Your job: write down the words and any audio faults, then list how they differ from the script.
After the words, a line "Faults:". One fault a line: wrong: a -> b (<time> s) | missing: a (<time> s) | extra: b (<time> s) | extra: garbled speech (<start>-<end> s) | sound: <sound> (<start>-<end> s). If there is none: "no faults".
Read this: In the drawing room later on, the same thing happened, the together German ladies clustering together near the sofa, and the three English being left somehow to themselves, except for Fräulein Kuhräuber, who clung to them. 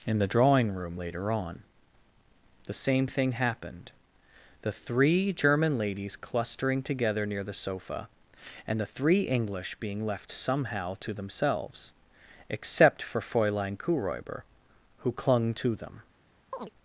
In the drawing room later on, the same thing happened, the three German ladies clustering together near the sofa, and the three English being left somehow to themselves, except for Fräulein Kuhräuber, who clung to them.
Faults:
wrong: together -> three (4.7 s)
sound: chirp (16.5-16.7 s)